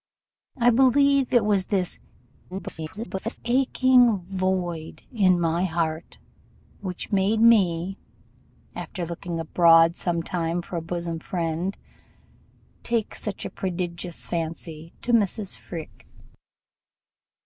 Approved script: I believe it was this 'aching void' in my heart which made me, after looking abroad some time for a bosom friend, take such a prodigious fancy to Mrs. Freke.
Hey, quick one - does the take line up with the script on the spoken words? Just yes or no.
no